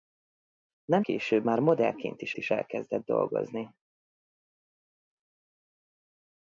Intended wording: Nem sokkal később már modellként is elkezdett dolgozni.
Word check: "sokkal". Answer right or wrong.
wrong